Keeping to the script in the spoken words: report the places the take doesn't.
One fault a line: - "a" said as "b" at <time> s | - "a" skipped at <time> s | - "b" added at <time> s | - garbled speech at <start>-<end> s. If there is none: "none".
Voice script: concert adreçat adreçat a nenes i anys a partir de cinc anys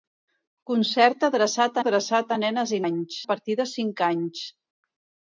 none